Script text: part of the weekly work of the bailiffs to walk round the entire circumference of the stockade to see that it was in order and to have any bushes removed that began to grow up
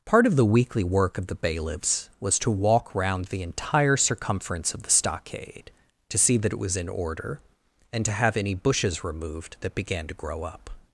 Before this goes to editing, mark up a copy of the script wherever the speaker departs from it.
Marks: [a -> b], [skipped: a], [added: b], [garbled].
part of the weekly work of the bailiffs [added: was] to walk round the entire circumference of the stockade to see that it was in order and to have any bushes removed that began to grow up